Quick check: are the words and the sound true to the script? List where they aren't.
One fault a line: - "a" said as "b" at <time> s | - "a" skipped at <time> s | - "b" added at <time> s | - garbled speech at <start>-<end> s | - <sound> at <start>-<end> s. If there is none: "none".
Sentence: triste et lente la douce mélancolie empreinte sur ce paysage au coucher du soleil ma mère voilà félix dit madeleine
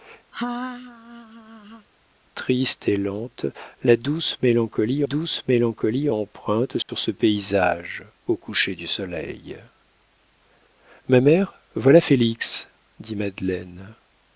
- laugh at 0.3-1.9 s
- "douce mélancolie" added at 5.0 s
- dropout at 6.8-6.9 s